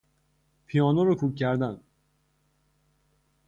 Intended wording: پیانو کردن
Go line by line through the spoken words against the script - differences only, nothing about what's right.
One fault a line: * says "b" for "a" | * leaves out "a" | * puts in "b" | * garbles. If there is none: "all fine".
* puts in "را کوک"